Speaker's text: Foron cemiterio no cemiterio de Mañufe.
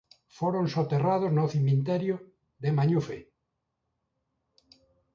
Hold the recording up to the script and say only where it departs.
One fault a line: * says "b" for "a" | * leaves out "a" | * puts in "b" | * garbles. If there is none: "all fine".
* says "soterrados" for "cemiterio"